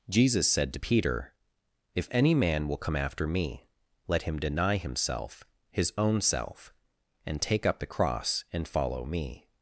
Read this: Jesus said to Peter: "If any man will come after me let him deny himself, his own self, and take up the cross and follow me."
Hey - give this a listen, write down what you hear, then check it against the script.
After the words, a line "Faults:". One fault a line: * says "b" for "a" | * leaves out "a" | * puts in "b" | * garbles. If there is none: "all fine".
Jesus said to Peter: "If any man will come after me let him deny himself, his own self, and take up the cross and follow me."
Faults:
all fine